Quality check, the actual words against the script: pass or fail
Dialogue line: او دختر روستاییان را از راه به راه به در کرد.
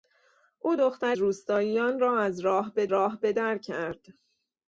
pass